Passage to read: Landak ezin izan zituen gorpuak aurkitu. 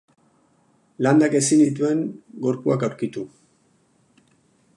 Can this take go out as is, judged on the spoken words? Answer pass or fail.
fail